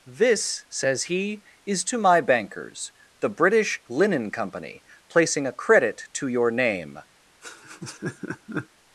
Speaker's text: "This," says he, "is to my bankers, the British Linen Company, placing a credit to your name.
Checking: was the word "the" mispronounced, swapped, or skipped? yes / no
no